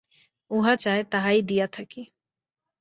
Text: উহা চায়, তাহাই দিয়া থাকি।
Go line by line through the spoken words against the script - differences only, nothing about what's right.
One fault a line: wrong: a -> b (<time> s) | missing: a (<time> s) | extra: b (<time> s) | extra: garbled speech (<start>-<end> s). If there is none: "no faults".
no faults